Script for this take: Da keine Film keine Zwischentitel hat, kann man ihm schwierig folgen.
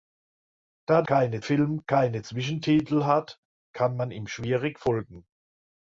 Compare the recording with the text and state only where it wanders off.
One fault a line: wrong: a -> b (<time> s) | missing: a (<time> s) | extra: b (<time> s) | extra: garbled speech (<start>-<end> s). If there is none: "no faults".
no faults